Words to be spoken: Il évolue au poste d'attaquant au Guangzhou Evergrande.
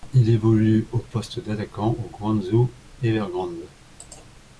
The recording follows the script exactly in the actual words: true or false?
true